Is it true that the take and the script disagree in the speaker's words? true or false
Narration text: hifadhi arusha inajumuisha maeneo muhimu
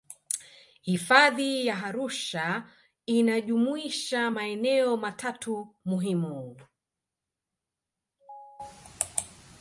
true